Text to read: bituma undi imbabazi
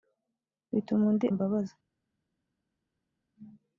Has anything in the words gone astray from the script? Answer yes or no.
no